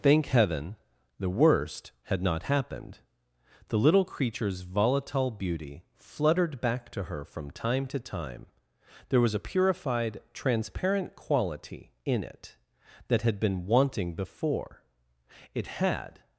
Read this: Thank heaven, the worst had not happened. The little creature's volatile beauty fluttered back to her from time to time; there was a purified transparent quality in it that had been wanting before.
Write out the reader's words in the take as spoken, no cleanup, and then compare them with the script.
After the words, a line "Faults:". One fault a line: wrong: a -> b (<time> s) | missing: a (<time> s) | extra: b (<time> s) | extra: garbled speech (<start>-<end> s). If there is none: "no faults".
Thank heaven, the worst had not happened. The little creature's volatile beauty fluttered back to her from time to time; there was a purified transparent quality in it that had been wanting before. It had
Faults:
extra: It had (15.5 s)